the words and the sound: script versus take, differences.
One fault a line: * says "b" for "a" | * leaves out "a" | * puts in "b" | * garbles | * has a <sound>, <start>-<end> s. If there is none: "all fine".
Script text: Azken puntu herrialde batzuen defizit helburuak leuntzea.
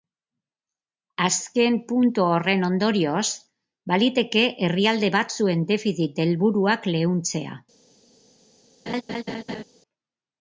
* puts in "horren ondorioz baliteke"
* has a laugh, 8.9-9.6 s